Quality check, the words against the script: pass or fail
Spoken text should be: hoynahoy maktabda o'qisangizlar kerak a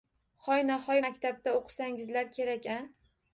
pass